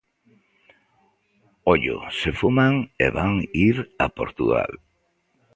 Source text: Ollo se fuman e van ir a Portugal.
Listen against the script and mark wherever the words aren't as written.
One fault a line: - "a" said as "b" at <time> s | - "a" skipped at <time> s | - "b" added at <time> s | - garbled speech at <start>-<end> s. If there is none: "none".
none